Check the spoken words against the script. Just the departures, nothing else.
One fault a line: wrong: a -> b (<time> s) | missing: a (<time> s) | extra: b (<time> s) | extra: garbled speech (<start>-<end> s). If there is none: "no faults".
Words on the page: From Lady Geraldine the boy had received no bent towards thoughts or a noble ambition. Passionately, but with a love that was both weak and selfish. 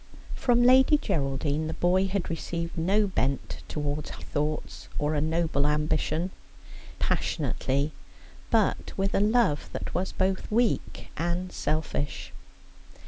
no faults